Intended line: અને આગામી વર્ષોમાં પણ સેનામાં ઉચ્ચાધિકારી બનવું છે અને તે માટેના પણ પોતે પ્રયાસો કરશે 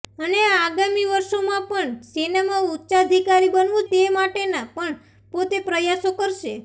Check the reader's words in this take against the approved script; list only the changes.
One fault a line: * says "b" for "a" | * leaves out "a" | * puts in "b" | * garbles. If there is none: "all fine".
* leaves out "છે અને"